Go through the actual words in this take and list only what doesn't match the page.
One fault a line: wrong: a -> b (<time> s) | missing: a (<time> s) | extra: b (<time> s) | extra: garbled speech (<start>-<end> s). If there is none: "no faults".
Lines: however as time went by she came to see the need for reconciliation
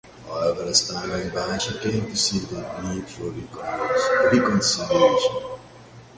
no faults